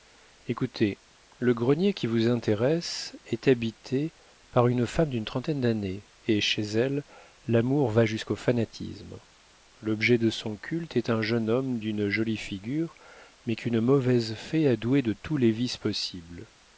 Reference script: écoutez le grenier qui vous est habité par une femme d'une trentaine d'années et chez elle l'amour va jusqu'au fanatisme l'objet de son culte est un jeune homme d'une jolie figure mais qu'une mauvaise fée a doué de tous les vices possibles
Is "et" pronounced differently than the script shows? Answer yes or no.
no